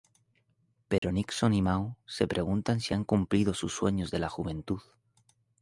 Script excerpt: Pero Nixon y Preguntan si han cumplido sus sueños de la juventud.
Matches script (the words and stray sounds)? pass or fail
fail